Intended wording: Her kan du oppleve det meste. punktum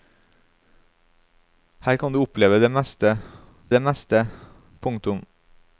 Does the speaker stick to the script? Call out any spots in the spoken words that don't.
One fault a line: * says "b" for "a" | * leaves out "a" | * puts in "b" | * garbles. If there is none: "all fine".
* puts in "det meste"